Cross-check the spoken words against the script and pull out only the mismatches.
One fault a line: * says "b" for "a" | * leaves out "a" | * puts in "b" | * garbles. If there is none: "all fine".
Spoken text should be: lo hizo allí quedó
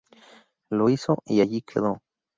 * puts in "y"